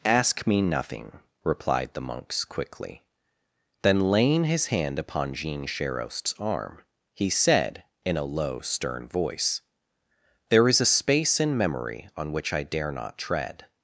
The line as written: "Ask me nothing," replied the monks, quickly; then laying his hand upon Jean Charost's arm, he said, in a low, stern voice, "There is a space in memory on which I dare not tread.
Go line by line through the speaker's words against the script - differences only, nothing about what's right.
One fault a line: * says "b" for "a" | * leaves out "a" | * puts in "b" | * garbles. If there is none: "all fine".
all fine